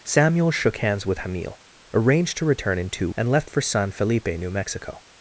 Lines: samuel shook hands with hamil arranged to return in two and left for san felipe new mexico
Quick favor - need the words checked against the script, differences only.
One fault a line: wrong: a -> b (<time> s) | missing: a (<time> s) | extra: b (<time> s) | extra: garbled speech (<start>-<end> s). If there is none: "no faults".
no faults